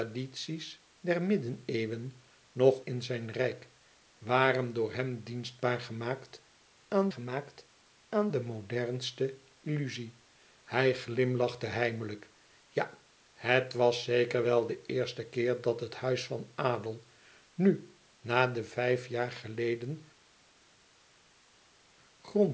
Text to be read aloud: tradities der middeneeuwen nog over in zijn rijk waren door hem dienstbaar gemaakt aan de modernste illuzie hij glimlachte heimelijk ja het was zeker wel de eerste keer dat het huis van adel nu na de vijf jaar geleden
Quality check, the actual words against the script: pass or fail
fail